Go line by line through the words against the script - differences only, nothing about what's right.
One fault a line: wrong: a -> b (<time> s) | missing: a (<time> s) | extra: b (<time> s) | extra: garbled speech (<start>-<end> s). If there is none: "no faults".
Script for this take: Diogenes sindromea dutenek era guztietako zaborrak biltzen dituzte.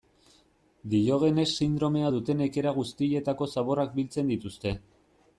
no faults